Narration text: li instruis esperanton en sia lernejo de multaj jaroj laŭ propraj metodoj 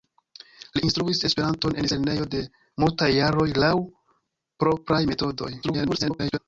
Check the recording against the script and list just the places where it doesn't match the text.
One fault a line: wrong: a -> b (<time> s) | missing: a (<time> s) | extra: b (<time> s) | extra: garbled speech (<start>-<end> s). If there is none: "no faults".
missing: sia (1.9 s)
extra: garbled speech (5.6-6.4 s)